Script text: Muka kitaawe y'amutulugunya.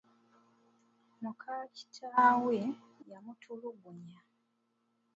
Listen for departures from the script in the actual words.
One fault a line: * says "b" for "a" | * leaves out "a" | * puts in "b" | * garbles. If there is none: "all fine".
all fine